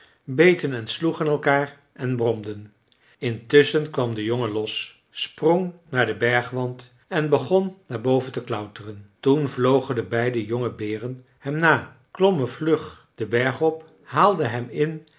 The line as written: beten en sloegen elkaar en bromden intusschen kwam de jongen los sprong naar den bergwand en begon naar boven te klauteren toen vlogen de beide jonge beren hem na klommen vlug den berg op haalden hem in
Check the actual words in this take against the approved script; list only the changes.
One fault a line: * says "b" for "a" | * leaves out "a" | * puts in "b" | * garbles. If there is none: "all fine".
all fine